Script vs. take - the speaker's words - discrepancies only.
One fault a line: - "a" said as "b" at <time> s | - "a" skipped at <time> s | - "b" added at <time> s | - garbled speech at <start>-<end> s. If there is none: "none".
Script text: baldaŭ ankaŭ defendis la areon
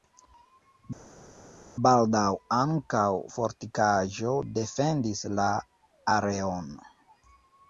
- "fortikaĵo" added at 3.4 s